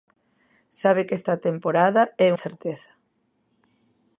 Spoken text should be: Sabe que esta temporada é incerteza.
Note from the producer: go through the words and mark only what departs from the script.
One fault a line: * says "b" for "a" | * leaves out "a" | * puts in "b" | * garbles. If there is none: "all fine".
all fine